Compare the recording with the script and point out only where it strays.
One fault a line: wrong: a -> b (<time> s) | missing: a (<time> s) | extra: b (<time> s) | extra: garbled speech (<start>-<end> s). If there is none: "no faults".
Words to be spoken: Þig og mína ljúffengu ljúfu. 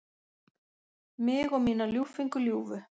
wrong: Þig -> Mig (1.3 s)